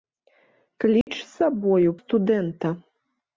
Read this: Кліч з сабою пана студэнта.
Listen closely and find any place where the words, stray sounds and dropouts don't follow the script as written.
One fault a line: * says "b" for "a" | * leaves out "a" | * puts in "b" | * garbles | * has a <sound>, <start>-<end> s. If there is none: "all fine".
* has a dropout, 1.0-1.1 s
* leaves out "пана"